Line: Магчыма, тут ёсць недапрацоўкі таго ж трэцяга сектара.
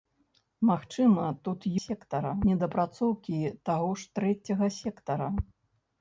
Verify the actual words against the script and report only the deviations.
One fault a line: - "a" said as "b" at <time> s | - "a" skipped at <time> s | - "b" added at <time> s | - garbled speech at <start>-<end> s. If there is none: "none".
- "ёсць" said as "сектара" at 1.8 s